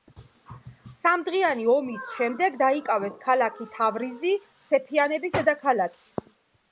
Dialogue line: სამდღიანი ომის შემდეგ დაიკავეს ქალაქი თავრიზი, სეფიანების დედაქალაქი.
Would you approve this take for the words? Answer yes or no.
yes